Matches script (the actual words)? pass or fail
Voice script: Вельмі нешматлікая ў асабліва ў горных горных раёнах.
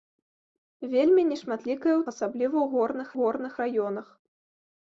pass